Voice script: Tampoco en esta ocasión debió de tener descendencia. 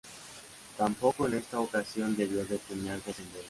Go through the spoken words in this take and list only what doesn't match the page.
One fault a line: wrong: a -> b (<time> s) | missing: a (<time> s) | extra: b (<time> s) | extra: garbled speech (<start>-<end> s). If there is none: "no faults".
no faults